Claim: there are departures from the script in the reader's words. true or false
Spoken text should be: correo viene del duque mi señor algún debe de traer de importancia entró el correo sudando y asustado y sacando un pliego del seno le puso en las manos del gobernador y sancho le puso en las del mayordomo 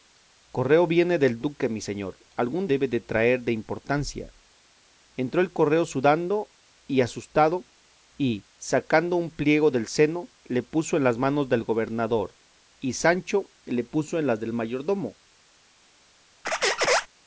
false